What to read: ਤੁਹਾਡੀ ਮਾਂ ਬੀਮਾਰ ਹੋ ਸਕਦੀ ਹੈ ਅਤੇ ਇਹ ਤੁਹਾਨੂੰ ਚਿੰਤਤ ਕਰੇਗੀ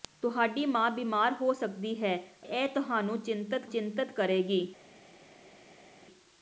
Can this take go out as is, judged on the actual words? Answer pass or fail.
fail